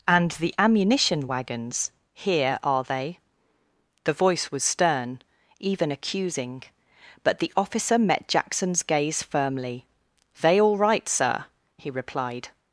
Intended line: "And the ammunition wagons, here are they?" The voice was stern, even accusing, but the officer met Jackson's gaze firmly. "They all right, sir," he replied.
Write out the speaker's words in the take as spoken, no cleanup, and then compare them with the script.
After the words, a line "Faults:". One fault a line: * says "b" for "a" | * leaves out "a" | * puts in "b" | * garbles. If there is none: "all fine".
"And the ammunition wagons, here are they?" The voice was stern, even accusing, but the officer met Jackson's gaze firmly. "They all right, sir," he replied.
Faults:
all fine